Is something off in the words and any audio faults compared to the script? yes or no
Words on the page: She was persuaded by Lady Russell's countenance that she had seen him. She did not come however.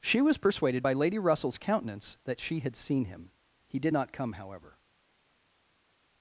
yes